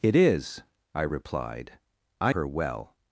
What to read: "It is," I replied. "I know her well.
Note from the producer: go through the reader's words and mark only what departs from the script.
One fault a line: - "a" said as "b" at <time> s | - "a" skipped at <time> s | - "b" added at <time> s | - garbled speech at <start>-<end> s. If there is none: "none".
- "know" skipped at 2.4 s